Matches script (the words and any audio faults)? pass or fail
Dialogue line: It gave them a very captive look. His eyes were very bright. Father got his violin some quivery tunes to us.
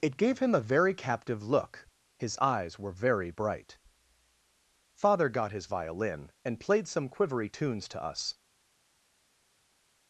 fail